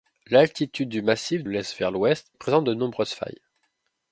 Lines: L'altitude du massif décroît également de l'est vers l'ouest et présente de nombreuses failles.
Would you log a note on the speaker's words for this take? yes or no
yes